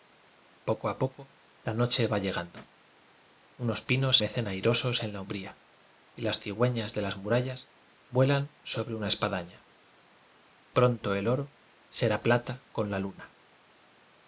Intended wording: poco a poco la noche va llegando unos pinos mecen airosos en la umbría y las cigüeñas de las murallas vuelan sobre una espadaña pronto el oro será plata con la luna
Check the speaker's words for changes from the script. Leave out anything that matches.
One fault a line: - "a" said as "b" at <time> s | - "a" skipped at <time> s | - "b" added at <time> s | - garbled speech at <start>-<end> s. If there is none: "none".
none